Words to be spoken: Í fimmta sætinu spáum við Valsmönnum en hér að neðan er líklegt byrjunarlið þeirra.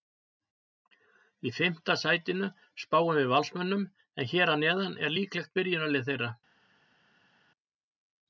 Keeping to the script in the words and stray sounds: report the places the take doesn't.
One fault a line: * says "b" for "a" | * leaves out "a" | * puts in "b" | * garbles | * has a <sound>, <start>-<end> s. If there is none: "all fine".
all fine